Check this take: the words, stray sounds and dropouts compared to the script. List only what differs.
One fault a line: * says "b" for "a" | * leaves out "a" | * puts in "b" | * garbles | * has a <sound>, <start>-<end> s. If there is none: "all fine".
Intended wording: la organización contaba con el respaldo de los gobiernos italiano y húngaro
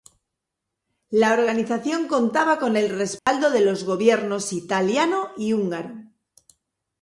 * has a dropout, 3.2-3.3 s